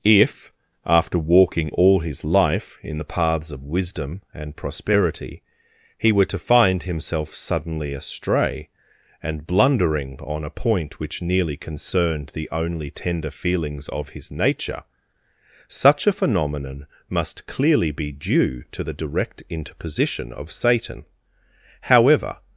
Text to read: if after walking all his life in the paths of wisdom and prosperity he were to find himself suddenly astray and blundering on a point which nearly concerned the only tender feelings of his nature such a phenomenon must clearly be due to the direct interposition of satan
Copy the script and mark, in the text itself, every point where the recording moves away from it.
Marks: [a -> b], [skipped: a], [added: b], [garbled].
if after walking all his life in the paths of wisdom and prosperity he were to find himself suddenly astray and blundering on a point which nearly concerned the only tender feelings of his nature such a phenomenon must clearly be due to the direct interposition of satan [added: however]